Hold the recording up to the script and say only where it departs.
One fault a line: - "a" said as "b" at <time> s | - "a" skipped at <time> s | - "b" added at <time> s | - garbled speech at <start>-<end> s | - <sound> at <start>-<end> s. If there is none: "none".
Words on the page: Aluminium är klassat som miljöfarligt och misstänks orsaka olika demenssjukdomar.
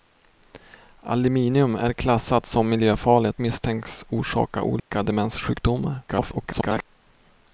- "och" skipped at 3.4 s
- dropout at 4.8-4.9 s
- garbled speech at 6.1-6.9 s